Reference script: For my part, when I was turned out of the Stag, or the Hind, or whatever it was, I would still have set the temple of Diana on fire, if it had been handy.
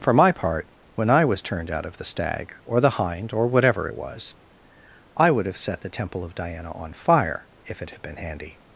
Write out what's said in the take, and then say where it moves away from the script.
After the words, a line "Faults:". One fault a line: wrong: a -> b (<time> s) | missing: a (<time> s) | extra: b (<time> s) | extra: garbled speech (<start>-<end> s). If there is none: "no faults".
For my part, when I was turned out of the Stag, or the Hind, or whatever it was, I would have set the temple of Diana on fire, if it had been handy.
Faults:
missing: still (5.5 s)